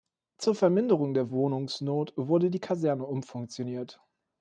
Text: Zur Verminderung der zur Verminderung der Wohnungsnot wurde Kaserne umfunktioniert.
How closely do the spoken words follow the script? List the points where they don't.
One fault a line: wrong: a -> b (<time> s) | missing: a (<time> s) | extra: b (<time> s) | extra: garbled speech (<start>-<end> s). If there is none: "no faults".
missing: zur Verminderung der (1.3 s)
extra: die (2.5 s)